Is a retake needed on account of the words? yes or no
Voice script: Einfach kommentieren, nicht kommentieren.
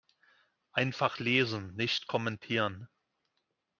yes